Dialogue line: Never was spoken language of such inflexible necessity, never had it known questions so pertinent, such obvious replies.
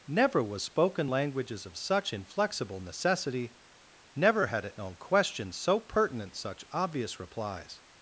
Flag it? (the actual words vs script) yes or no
yes